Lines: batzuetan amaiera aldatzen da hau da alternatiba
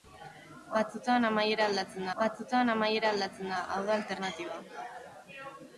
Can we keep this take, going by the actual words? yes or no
no